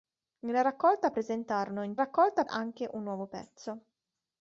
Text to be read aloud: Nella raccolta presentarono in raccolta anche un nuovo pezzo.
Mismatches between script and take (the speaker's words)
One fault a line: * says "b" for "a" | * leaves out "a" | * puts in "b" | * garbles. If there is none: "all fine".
all fine